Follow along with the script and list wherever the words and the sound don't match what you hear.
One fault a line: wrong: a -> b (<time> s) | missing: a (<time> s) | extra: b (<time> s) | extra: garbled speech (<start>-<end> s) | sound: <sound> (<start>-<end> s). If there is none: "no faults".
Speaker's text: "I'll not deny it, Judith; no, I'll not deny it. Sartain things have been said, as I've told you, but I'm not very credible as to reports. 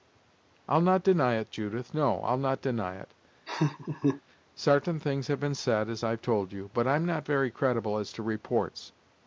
sound: laugh (3.5-4.2 s)